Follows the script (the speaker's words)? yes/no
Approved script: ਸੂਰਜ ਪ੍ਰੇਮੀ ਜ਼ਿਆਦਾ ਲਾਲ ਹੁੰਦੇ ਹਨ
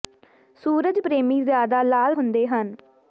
yes